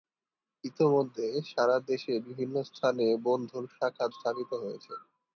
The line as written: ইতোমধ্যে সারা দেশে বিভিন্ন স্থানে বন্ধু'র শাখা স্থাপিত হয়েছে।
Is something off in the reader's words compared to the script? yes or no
no